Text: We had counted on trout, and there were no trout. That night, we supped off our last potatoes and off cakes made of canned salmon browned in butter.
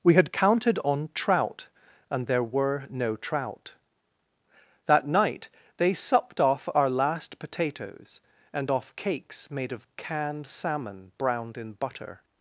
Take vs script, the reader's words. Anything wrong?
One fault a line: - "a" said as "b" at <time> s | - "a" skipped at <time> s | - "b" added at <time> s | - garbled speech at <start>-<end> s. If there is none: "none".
- "we" said as "they" at 5.8 s